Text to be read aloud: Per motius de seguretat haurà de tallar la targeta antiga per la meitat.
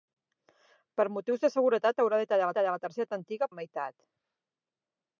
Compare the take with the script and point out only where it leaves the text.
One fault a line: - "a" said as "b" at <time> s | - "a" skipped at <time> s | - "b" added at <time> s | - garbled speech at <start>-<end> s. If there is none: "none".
- "tallar" added at 2.6 s
- "per" skipped at 3.5 s